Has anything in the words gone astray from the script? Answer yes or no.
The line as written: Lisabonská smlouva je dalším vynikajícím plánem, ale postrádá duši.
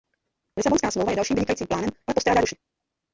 no